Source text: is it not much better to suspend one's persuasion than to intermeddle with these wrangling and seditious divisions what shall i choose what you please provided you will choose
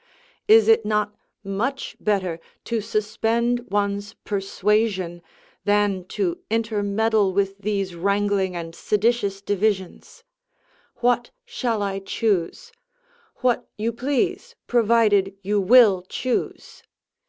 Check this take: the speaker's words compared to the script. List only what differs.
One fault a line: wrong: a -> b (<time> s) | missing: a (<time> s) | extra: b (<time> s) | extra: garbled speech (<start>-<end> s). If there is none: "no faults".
no faults